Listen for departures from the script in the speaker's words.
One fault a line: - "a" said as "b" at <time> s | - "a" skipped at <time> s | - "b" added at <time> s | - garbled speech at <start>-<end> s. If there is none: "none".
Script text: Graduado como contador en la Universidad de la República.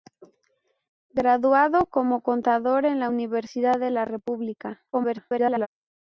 - garbled speech at 4.9-5.7 s